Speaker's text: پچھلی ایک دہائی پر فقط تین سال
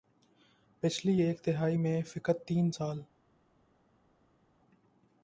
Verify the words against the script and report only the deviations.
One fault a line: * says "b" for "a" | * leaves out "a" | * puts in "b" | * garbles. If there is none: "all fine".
* says "میں" for "پر"